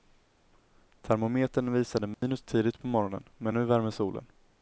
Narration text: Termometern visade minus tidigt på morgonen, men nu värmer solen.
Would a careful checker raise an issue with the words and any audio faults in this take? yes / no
yes